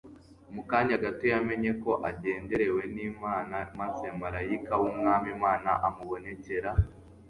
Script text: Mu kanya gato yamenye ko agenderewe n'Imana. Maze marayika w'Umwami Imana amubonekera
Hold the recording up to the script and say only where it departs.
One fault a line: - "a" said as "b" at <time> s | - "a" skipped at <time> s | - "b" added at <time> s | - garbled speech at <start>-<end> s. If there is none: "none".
none